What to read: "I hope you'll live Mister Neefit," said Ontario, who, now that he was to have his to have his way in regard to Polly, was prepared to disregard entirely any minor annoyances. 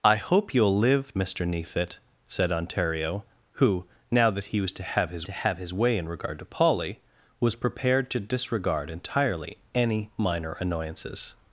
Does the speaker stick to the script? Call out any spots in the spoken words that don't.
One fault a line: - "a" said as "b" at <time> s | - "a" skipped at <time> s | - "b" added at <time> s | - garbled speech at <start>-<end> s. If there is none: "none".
none